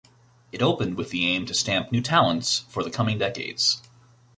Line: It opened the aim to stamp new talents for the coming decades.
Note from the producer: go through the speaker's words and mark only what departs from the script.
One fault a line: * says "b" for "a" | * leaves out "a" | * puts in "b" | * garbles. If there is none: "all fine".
* puts in "with"